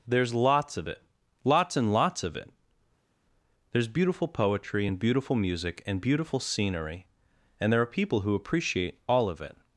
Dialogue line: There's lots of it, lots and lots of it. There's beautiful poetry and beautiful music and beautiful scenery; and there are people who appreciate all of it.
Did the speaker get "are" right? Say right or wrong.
right